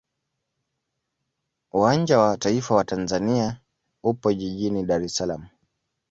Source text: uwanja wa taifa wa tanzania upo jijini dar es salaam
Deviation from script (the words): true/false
false